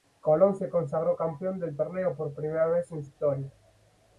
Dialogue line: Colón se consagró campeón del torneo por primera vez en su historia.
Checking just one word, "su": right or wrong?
wrong